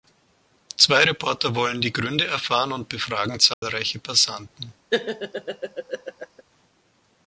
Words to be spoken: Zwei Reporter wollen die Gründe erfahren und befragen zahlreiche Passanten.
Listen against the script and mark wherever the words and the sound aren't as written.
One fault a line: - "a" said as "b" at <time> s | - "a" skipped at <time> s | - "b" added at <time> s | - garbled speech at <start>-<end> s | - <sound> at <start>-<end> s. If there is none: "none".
- dropout at 3.5-3.6 s
- laugh at 4.9-6.4 s